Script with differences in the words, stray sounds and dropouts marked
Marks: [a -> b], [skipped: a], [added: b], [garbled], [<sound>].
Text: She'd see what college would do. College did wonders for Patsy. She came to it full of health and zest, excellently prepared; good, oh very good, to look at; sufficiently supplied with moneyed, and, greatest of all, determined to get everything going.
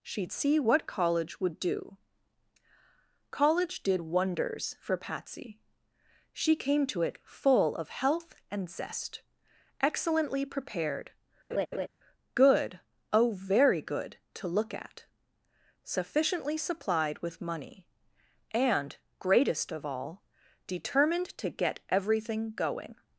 She'd see what college would do. College did wonders for Patsy. She came to it full of health and zest, excellently prepared; [laugh] good, oh very good, to look at; sufficiently supplied with [moneyed, -> money] and, greatest of all, determined to get everything going.